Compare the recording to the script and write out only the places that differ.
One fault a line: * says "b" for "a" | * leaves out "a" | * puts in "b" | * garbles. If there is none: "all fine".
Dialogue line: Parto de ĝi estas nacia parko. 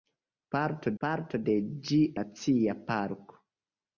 * puts in "parto"
* leaves out "estas"